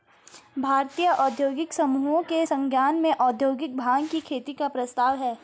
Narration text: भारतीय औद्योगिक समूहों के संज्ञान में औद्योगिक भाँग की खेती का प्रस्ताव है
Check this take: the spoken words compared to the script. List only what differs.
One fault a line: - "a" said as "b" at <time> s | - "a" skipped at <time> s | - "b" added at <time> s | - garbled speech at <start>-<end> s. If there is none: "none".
none